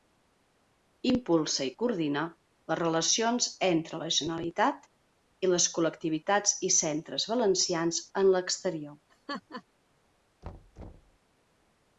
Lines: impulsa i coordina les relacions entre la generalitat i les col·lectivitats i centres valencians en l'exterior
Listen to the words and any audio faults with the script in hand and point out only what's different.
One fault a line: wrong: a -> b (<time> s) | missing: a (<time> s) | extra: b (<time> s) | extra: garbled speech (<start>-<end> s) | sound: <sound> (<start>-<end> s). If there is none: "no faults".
sound: laugh (9.1-9.6 s)
sound: thud (10.4-11.2 s)